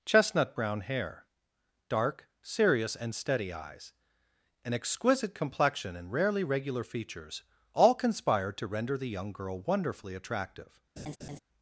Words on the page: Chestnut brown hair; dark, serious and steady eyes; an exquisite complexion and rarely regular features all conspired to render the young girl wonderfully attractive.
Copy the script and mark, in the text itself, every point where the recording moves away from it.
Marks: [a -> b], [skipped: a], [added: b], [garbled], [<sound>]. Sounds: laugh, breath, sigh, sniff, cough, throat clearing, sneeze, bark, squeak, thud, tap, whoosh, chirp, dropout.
Chestnut brown hair; dark, serious and steady eyes; an exquisite complexion and rarely regular features all conspired to render the young girl wonderfully attractive. [laugh]